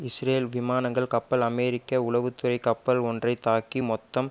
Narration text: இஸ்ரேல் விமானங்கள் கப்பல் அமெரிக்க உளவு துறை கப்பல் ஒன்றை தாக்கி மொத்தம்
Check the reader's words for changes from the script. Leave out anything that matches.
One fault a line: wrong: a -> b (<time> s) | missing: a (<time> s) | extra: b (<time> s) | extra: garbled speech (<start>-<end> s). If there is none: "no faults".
no faults